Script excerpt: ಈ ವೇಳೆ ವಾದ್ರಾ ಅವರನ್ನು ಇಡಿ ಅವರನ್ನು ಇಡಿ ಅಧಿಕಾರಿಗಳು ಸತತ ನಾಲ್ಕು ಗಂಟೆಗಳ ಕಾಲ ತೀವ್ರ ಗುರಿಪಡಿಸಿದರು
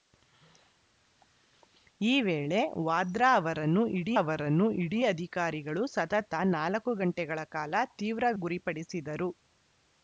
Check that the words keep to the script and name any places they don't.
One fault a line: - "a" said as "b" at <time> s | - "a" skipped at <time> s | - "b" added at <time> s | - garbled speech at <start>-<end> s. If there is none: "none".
none